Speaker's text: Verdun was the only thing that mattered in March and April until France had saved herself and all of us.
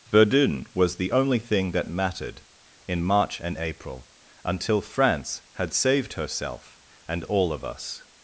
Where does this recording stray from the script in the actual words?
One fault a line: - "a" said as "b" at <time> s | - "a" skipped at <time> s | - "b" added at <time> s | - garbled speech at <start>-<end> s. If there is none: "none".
none